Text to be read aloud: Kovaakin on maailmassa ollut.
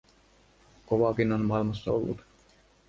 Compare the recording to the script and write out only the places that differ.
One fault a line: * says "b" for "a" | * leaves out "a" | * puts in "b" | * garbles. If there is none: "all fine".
all fine